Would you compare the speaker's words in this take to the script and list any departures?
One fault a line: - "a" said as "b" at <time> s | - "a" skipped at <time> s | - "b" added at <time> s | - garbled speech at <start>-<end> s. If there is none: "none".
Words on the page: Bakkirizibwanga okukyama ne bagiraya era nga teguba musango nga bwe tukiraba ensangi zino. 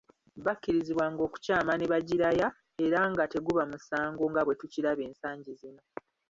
none